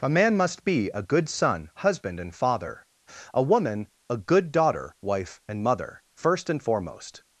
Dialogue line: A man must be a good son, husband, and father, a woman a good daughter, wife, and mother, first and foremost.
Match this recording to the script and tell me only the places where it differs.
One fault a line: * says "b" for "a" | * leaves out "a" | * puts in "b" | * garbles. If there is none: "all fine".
all fine